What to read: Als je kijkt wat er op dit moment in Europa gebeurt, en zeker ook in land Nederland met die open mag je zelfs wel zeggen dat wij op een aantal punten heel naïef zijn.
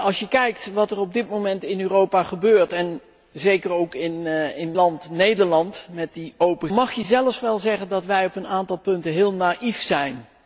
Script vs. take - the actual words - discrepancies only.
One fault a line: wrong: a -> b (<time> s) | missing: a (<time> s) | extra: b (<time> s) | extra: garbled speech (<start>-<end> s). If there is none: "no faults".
no faults